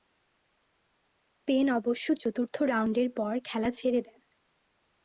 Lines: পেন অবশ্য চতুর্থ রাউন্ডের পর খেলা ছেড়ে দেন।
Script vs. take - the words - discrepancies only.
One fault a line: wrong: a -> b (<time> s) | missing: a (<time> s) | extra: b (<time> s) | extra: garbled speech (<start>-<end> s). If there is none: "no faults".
no faults